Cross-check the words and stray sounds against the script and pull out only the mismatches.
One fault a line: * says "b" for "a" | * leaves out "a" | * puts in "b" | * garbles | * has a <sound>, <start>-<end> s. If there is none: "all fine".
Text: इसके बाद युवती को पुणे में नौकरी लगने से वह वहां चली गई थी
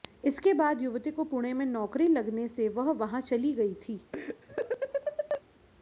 * has a laugh, 4.1-5.4 s